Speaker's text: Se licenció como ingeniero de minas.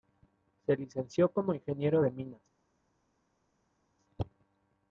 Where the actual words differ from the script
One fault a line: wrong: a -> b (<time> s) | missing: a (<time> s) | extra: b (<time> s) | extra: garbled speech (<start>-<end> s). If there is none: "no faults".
no faults